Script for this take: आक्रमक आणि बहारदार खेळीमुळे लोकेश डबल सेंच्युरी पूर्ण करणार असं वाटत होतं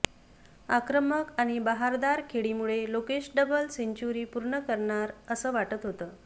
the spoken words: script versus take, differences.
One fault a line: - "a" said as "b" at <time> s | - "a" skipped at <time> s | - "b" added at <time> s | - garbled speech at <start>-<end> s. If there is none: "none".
none